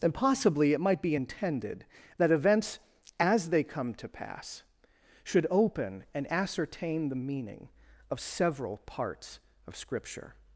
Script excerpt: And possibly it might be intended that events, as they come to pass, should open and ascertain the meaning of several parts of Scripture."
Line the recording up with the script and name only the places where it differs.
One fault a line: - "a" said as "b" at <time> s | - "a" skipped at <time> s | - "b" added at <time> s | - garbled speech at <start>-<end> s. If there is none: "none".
none